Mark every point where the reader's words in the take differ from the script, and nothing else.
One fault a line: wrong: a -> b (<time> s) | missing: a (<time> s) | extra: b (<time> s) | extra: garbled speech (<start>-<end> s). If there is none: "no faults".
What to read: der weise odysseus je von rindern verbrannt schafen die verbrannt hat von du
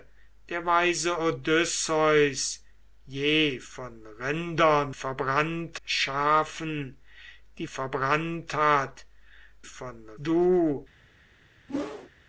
no faults